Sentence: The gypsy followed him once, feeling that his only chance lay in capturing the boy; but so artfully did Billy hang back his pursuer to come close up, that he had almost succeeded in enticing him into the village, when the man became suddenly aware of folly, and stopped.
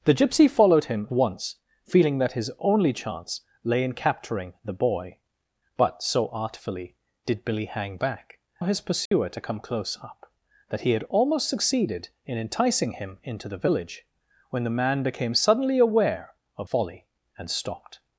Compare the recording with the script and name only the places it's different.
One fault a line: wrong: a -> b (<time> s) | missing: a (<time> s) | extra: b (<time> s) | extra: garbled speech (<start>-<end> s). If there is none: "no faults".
no faults